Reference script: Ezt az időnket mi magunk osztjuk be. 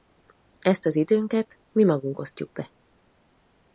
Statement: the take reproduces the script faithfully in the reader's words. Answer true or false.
true